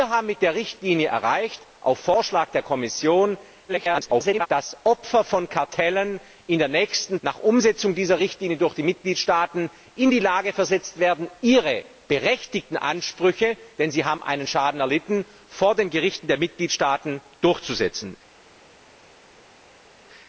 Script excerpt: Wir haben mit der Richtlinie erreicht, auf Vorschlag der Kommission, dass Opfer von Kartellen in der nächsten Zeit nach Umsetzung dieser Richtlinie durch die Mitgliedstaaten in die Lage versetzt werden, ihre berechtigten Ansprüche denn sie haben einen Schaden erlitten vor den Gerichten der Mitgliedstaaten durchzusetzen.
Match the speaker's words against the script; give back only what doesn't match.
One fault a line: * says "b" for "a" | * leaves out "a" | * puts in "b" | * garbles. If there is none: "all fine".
* garbles
* leaves out "Zeit"